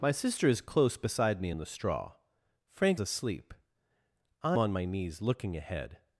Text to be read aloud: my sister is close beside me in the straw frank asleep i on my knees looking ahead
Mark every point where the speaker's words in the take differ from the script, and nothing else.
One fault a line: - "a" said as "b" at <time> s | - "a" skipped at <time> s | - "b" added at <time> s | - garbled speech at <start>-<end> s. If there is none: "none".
none